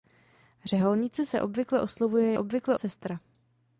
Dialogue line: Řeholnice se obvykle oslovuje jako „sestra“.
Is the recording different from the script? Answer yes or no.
yes